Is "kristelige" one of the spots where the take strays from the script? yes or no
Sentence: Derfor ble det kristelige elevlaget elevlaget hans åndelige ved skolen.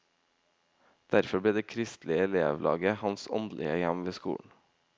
no